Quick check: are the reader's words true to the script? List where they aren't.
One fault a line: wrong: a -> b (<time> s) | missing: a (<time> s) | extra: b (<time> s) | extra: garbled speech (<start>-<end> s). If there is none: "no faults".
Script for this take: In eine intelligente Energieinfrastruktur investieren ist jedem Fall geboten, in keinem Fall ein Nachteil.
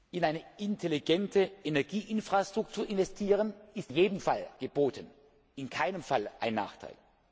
no faults